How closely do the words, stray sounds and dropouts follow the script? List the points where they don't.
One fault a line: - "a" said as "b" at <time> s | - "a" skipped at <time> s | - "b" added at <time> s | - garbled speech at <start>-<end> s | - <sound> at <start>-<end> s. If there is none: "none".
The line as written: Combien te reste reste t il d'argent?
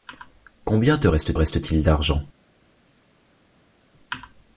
none